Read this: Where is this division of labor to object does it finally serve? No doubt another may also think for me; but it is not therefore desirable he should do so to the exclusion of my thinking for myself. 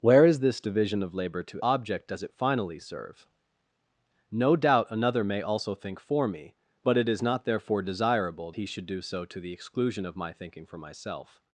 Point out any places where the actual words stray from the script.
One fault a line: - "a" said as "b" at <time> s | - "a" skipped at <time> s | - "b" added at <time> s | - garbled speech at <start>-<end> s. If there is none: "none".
none